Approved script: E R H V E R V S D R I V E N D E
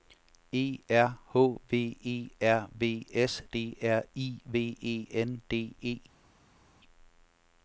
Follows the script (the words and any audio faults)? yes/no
yes